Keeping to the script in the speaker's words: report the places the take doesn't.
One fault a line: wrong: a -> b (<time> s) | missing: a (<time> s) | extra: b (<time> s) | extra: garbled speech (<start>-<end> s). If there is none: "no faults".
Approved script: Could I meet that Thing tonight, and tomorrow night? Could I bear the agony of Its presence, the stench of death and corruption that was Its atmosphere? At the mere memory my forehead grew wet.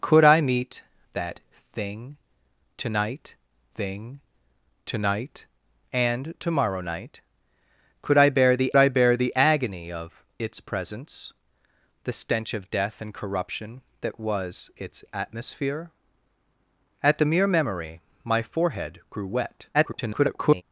extra: Thing tonight (3.7 s)
extra: I bear the (8.8 s)
extra: garbled speech (19.7-20.6 s)